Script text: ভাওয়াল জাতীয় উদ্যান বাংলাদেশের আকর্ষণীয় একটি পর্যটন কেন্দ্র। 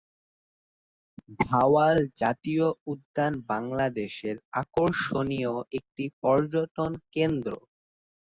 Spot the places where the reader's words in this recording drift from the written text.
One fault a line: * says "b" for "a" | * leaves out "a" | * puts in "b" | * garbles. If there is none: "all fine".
all fine